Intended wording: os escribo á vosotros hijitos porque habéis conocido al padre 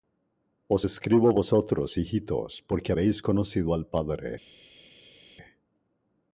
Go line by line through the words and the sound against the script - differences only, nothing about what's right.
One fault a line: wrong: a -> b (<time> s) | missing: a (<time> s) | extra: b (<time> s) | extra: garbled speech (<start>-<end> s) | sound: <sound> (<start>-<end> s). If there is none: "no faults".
no faults